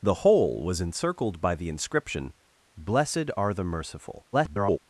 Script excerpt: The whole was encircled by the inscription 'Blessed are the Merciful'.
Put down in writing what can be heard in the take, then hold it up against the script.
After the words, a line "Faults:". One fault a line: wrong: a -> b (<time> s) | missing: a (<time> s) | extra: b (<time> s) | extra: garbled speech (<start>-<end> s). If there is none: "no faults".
The whole was encircled by the inscription 'Blessed are the Merciful'. [garbled]
Faults:
extra: garbled speech (4.3-4.8 s)